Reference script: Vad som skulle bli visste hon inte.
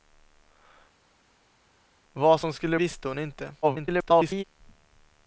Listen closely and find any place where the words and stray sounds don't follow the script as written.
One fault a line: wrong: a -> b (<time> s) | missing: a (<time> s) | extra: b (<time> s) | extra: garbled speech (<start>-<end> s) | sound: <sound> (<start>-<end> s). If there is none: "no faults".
missing: bli (2.8 s)
extra: garbled speech (3.6-4.4 s)